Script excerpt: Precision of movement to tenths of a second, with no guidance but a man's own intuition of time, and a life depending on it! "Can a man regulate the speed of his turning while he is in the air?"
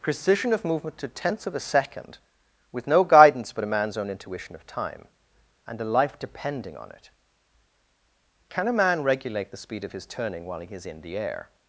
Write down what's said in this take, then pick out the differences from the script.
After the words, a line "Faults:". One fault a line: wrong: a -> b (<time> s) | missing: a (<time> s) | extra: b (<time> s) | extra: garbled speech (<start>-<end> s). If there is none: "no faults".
Precision of movement to tenths of a second, with no guidance but a man's own intuition of time, and a life depending on it! "Can a man regulate the speed of his turning while he is in the air?"
Faults:
no faults